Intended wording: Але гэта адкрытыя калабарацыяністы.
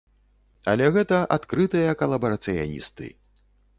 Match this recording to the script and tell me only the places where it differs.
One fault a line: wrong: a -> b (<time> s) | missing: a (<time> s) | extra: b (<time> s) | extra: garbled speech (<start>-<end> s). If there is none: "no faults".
no faults